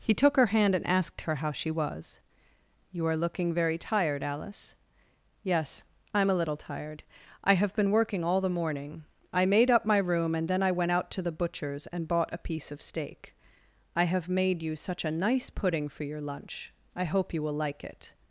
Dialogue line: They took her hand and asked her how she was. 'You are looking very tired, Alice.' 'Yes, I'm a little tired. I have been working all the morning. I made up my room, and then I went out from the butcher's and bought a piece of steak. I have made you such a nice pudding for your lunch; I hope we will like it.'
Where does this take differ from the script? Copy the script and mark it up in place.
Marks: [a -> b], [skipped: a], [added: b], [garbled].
[They -> He] took her hand and asked her how she was. 'You are looking very tired, Alice.' 'Yes, I'm a little tired. I have been working all the morning. I made up my room, and then I went out [from -> to] the butcher's and bought a piece of steak. I have made you such a nice pudding for your lunch; I hope [we -> you] will like it.'